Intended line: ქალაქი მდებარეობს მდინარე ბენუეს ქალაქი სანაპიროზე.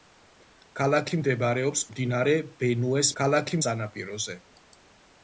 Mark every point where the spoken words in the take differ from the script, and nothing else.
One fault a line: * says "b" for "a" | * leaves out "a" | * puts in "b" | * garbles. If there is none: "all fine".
all fine